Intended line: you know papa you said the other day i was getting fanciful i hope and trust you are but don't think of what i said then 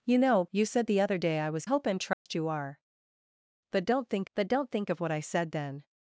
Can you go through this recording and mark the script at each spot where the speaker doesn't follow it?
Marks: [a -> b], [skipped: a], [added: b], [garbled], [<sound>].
you know [skipped: papa] you said the other day i was [skipped: getting fanciful i] hope and trust [dropout] you are but don't think [added: but don't think] of what i said then